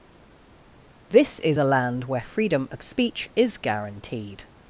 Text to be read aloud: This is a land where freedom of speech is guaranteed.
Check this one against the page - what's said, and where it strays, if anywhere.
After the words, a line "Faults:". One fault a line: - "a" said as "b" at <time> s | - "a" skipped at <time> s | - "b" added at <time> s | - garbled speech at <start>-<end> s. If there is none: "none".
This is a land where freedom of speech is guaranteed.
Faults:
none